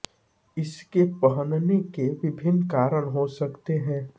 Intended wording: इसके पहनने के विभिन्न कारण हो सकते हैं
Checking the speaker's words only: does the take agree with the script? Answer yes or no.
yes